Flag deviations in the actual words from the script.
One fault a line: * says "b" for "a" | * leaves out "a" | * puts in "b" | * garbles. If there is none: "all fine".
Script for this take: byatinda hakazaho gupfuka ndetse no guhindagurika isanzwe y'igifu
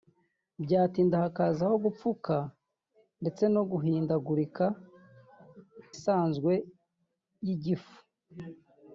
all fine